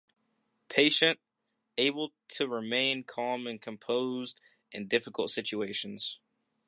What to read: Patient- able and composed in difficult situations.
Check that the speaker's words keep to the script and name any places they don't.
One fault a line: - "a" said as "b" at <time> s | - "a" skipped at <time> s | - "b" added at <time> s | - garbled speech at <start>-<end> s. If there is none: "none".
- "to remain calm" added at 2.3 s